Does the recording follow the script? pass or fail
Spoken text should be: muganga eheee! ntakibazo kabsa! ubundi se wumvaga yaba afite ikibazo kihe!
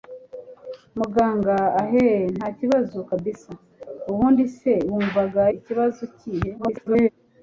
fail